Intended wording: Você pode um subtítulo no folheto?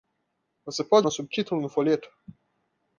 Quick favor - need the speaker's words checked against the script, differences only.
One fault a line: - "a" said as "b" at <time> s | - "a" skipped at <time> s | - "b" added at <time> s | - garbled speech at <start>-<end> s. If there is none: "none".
none